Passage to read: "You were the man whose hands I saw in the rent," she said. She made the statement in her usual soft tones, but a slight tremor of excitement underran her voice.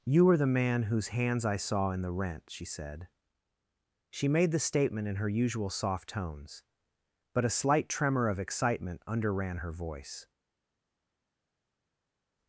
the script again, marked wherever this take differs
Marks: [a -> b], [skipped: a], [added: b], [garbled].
"You were the man whose hands I saw in the rent," she said. She made the statement in her usual soft tones, but a slight tremor of excitement underran her voice.